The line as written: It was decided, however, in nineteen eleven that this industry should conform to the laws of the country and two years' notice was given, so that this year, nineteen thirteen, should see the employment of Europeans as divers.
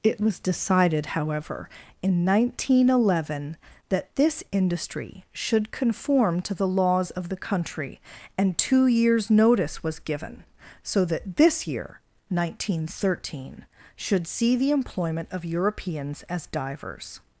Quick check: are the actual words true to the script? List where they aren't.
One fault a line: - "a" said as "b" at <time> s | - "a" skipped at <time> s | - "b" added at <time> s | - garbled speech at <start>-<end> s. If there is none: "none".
none